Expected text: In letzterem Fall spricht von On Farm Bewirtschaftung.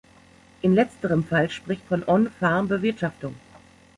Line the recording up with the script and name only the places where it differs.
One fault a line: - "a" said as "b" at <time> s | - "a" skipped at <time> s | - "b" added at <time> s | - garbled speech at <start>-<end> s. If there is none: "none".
none